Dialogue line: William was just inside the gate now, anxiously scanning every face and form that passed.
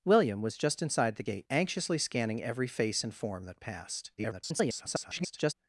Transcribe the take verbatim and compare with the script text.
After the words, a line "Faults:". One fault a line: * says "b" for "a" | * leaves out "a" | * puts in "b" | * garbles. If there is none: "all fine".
William was just inside the gate anxiously scanning every face and form that passed. [garbled]
Faults:
* leaves out "now"
* garbles